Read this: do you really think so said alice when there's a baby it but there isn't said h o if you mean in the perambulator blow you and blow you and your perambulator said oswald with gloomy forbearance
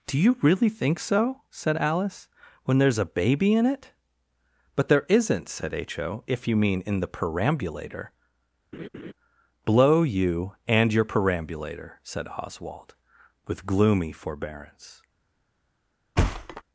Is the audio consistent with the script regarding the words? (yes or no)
no